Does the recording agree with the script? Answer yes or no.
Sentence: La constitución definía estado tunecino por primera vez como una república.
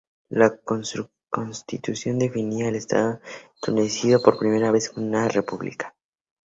no